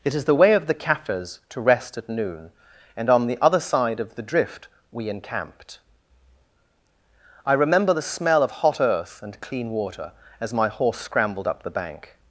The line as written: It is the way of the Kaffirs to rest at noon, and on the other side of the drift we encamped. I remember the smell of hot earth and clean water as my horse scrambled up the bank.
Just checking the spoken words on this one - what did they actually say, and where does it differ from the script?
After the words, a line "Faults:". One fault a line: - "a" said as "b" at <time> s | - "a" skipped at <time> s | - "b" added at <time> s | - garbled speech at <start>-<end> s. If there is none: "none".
It is the way of the Kaffirs to rest at noon, and on the other side of the drift we encamped. I remember the smell of hot earth and clean water as my horse scrambled up the bank.
Faults:
none